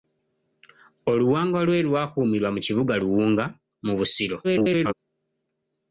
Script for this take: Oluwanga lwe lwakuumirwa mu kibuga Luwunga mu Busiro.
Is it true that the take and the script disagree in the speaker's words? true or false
true